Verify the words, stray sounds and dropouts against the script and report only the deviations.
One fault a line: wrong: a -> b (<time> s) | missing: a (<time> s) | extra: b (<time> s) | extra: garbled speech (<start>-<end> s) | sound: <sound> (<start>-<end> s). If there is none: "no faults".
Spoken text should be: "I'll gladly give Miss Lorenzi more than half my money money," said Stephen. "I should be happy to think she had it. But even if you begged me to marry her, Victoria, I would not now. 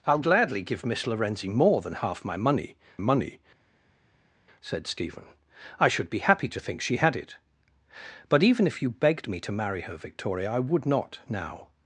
no faults